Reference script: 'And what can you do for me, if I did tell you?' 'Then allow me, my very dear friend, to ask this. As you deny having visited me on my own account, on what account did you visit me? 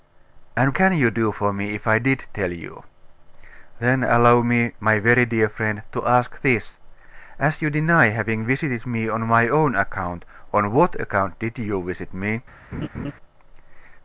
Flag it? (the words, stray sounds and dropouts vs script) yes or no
yes